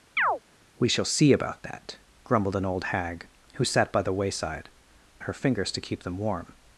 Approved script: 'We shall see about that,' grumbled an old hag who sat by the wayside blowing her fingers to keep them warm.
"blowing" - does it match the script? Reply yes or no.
no